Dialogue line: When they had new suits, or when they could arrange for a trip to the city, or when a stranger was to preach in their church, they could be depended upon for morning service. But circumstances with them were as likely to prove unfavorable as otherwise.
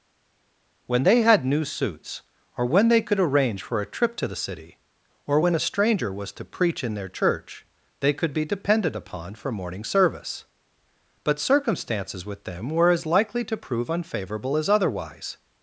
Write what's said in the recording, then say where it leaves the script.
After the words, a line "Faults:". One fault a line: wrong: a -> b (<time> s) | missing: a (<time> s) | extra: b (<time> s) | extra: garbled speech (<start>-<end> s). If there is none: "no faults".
When they had new suits, or when they could arrange for a trip to the city, or when a stranger was to preach in their church, they could be depended upon for morning service. But circumstances with them were as likely to prove unfavorable as otherwise.
Faults:
no faults